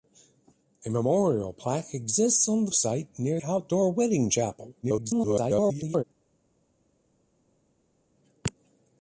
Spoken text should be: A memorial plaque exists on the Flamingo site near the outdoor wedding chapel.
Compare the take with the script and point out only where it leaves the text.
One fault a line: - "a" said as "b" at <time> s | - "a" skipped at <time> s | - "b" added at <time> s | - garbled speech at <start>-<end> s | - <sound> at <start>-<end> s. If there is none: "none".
- "Flamingo" skipped at 2.7 s
- "the" skipped at 3.4 s
- garbled speech at 4.8-6.0 s